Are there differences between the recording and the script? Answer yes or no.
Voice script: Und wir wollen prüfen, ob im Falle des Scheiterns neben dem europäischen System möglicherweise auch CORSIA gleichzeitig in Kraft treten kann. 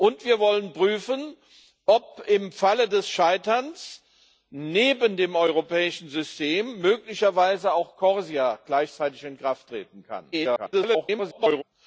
yes